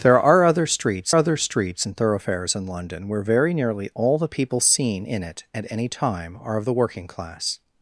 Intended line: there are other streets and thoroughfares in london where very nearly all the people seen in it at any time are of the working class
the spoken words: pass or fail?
fail